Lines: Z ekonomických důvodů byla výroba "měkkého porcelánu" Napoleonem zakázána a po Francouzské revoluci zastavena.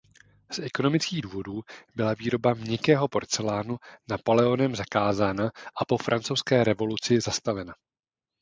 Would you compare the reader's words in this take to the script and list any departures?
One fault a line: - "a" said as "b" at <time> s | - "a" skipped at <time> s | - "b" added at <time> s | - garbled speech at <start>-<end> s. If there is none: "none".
none